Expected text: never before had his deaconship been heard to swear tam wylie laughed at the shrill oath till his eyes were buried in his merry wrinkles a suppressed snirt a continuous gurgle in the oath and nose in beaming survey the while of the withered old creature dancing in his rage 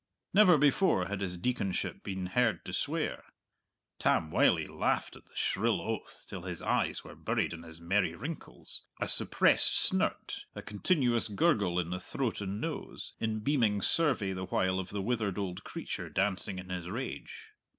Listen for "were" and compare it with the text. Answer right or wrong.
right